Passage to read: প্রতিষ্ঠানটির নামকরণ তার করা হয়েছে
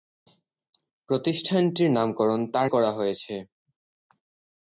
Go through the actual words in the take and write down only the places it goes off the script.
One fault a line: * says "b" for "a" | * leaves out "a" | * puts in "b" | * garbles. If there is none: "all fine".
all fine